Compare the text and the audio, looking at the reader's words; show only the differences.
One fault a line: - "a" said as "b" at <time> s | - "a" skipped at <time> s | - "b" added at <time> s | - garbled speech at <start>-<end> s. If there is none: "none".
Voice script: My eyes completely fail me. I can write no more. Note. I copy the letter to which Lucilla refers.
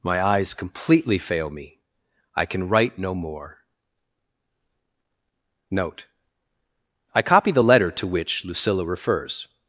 none